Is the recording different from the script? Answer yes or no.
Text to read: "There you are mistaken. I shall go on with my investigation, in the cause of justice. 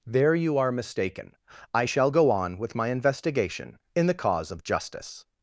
no